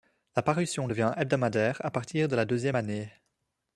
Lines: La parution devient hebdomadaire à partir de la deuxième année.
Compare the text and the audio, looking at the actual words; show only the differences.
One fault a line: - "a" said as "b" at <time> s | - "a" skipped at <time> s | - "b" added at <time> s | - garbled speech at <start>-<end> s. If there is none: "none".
none